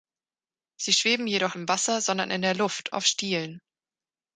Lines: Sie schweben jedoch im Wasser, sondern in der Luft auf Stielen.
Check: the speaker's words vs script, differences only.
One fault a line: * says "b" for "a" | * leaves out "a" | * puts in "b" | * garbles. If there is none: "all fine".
all fine